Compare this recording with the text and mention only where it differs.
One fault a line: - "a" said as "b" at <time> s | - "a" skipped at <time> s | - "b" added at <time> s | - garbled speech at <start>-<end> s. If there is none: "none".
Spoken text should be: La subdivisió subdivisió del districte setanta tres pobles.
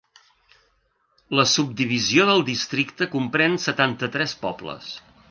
- "subdivisió" skipped at 2.2 s
- "comprèn" added at 3.2 s